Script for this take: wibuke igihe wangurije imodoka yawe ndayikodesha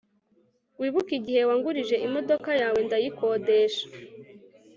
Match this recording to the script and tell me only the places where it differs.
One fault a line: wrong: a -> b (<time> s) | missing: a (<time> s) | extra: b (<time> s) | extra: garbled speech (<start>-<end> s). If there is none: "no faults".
no faults